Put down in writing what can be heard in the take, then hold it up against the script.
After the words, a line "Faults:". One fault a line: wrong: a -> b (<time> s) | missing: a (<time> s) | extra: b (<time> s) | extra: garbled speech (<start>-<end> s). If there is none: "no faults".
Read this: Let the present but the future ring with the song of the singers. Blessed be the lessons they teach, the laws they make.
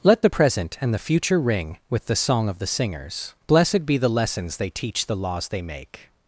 Let the present and the future ring with the song of the singers. Blessed be the lessons they teach, the laws they make.
Faults:
wrong: but -> and (0.8 s)